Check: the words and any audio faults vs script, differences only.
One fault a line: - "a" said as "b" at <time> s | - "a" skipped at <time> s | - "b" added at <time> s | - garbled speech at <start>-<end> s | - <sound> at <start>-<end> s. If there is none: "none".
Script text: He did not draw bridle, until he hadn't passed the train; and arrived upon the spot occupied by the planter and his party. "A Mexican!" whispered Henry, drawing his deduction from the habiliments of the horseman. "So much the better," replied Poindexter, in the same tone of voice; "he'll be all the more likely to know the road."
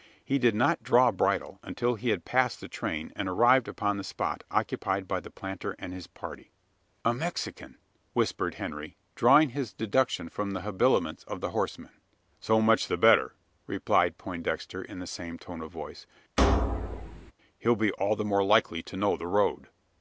- "hadn't" said as "had" at 2.1 s
- thud at 16.4-17.3 s